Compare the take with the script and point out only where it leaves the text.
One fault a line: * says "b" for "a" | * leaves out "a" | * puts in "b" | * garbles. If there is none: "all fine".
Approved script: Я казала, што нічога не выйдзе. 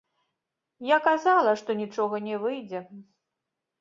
all fine